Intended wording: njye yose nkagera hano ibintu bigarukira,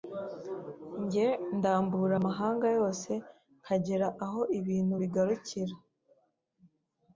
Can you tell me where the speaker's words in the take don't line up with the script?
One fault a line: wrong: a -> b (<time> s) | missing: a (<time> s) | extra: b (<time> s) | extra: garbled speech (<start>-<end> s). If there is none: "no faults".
extra: ndambura amahanga (1.6 s)
wrong: hano -> aho (4.2 s)